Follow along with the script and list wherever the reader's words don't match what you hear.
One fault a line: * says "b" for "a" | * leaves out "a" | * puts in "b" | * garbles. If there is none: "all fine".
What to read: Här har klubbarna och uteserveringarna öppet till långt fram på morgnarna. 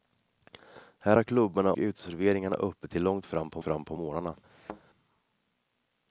* leaves out "och"
* puts in "fram på"